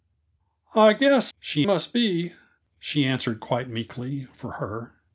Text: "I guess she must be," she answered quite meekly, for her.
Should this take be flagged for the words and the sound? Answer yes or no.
no